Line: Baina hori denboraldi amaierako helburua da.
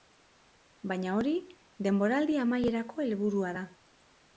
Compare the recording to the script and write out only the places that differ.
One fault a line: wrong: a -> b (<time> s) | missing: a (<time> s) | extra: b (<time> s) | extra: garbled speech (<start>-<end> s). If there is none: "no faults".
no faults